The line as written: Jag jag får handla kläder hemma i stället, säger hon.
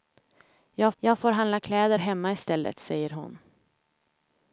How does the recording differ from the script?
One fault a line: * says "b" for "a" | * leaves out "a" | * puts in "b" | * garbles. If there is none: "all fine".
all fine